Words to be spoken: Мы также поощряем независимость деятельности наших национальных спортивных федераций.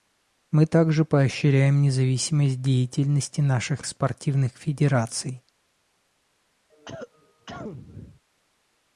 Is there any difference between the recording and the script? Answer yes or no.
yes